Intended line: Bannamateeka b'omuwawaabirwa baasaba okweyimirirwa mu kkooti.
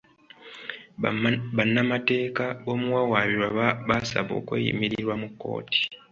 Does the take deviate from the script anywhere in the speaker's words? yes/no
no